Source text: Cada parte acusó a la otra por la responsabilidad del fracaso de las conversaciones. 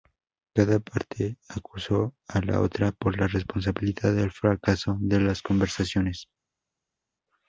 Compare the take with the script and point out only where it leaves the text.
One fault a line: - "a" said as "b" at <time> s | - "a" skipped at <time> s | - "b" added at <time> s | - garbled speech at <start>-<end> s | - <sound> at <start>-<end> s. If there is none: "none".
none